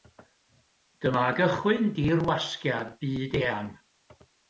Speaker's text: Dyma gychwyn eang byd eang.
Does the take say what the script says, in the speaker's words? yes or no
no